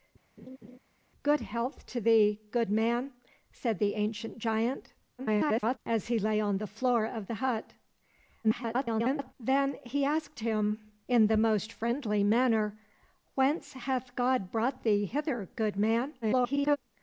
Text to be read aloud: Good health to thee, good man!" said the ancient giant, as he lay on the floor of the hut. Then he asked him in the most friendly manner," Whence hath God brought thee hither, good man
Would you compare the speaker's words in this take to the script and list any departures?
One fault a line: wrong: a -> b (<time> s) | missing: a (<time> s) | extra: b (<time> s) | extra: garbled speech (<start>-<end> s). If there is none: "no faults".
extra: garbled speech (5.2-5.8 s)
extra: garbled speech (8.4-9.3 s)
extra: garbled speech (16.2-16.8 s)